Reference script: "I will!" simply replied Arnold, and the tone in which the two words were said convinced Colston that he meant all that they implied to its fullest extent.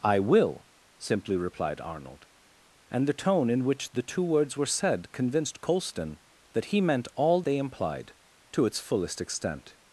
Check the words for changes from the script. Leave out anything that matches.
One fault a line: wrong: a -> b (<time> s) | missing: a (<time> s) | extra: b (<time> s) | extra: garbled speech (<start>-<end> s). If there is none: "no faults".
missing: that (7.4 s)